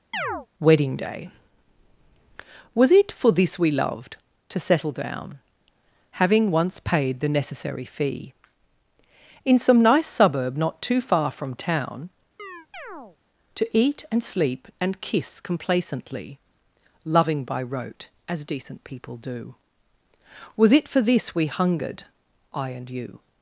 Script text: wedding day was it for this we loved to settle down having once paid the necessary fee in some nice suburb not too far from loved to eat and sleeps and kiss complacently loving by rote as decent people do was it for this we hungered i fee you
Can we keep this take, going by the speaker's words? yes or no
no